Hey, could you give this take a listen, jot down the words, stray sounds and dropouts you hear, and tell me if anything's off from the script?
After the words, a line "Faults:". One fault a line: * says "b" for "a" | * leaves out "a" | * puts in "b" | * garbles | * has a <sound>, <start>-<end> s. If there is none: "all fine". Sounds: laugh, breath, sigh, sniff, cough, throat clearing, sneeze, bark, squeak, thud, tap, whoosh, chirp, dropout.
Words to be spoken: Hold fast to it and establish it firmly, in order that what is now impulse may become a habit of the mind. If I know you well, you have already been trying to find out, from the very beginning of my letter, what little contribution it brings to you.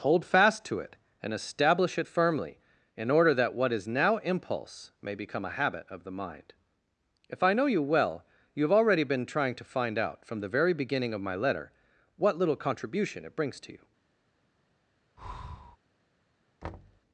Hold fast to it and establish it firmly, in order that what is now impulse may become a habit of the mind. If I know you well, you have already been trying to find out, from the very beginning of my letter, what little contribution it brings to you.
Faults:
* has a breath, 15.2-15.8 s
* has a thud, 16.6-17.0 s